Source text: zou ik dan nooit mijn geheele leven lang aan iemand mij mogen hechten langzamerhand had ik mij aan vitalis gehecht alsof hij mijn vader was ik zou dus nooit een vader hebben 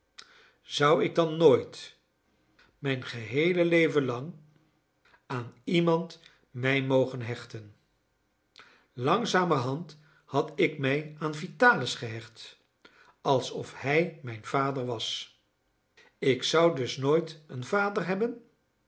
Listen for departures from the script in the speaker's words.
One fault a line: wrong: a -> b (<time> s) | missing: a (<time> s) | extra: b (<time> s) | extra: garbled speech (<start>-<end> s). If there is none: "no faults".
no faults